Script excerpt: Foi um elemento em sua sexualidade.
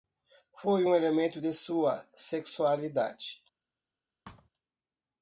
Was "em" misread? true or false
true